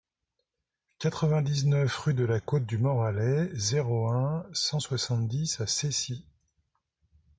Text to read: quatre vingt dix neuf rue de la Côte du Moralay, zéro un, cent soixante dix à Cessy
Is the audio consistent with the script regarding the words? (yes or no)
yes